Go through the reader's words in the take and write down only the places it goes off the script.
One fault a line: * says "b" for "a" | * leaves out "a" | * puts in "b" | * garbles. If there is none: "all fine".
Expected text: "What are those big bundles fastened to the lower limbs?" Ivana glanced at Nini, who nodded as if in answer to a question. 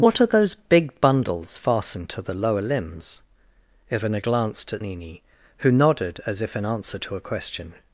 all fine